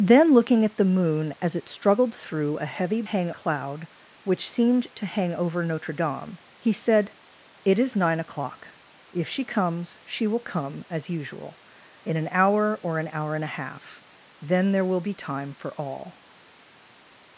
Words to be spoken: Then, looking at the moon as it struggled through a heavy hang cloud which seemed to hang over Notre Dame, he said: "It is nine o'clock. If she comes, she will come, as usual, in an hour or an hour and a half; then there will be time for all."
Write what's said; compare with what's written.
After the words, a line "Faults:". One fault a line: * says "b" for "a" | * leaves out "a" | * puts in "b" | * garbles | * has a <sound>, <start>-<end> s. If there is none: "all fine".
Then, looking at the moon as it struggled through a heavy hang cloud which seemed to hang over Notre Dame, he said: "It is nine o'clock. If she comes, she will come, as usual, in an hour or an hour and a half; then there will be time for all."
Faults:
all fine